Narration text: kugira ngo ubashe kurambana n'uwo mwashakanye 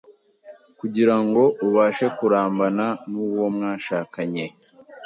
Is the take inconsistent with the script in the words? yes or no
no